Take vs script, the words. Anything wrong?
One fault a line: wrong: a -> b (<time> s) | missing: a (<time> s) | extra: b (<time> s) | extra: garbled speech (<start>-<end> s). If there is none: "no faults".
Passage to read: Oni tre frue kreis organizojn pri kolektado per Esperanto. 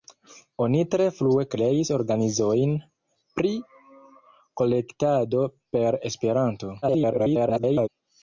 extra: garbled speech (6.8-7.9 s)